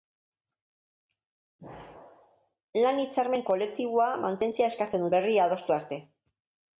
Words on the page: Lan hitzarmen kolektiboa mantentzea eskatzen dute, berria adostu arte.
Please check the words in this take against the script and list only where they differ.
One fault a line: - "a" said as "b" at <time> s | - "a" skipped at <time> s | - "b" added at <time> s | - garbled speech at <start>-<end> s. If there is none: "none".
- "dute" skipped at 5.1 s